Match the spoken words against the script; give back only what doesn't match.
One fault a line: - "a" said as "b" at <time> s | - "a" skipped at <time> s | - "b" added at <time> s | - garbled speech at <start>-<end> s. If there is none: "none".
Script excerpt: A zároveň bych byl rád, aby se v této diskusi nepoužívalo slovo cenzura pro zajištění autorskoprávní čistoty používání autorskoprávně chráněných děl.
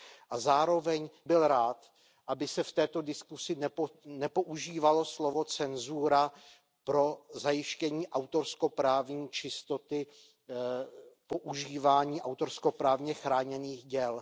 - "bych" skipped at 1.1 s